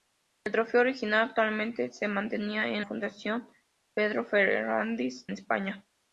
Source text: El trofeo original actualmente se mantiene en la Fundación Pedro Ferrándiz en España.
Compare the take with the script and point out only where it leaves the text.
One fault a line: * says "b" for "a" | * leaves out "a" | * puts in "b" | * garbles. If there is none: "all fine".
* leaves out "la"
* leaves out "en"